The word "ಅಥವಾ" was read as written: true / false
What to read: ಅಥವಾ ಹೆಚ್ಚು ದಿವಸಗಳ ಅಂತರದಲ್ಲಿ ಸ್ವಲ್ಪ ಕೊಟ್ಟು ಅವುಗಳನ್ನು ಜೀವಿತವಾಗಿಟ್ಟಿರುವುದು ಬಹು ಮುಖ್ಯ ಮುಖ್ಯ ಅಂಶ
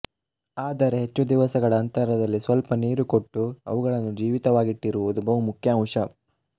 false